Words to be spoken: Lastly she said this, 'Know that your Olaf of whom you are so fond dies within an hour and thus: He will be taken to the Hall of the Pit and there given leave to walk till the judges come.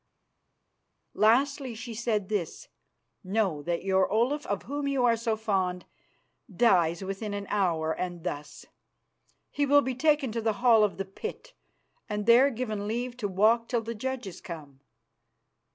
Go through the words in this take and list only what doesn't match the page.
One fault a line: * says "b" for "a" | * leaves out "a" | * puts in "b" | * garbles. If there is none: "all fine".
all fine